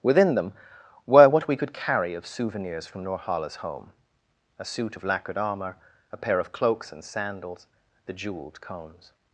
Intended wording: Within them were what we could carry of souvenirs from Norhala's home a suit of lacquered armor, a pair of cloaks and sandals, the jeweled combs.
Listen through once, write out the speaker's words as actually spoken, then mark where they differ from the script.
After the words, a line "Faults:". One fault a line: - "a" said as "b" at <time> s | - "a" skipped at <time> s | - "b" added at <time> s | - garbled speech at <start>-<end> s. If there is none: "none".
Within them were what we could carry of souvenirs from Norhala's home a suit of lacquered armor, a pair of cloaks and sandals, the jeweled cones.
Faults:
- "combs" said as "cones" at 8.6 s